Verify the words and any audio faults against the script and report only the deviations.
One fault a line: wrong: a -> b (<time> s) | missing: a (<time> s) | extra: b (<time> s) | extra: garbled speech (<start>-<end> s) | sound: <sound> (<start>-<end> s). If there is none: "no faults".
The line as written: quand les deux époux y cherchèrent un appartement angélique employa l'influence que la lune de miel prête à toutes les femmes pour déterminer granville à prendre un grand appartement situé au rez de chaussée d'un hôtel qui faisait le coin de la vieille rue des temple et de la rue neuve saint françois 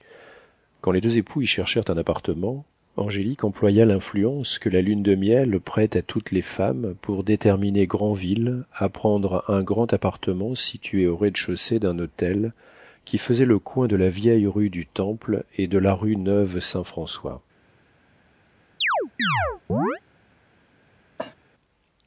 wrong: des -> du (14.7 s)
sound: chirp (18.8-20.0 s)
sound: cough (21.2-21.4 s)